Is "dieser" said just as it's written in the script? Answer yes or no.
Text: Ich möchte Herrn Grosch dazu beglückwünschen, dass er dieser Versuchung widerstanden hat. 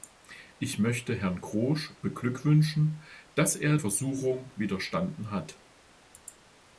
no